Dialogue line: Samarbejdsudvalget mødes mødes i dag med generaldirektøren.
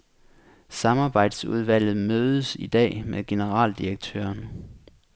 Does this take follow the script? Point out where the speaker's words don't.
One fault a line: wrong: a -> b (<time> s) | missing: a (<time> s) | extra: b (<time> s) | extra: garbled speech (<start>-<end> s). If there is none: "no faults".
missing: mødes (2.5 s)